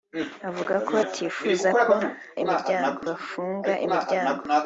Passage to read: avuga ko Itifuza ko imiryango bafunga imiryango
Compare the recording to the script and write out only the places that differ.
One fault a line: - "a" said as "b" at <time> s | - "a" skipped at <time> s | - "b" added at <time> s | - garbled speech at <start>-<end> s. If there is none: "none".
none